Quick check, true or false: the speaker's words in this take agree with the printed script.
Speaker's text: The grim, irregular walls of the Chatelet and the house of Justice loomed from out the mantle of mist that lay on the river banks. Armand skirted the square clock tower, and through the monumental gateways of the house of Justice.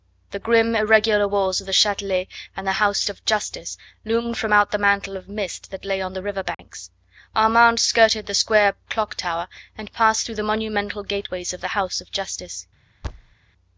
false